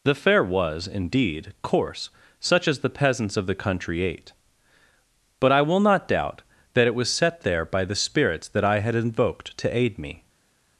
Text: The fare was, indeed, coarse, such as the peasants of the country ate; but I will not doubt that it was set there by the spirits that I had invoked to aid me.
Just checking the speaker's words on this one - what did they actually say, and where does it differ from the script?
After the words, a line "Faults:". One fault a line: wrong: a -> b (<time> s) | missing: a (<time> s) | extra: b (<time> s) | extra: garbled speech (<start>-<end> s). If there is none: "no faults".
The fare was, indeed, coarse, such as the peasants of the country ate; but I will not doubt that it was set there by the spirits that I had invoked to aid me.
Faults:
no faults